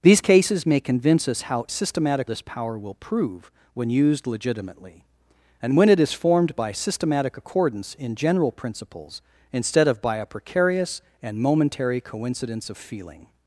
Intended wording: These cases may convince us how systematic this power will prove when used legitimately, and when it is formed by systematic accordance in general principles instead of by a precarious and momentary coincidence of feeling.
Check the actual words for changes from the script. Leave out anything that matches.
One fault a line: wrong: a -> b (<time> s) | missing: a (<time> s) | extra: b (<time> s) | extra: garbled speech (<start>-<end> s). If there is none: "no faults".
no faults